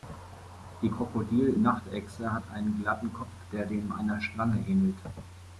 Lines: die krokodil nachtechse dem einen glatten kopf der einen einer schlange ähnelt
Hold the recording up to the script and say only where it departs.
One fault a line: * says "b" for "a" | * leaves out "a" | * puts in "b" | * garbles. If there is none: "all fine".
* says "hat" for "dem"
* says "dem" for "einen"